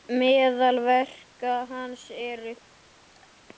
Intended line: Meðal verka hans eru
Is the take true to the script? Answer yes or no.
yes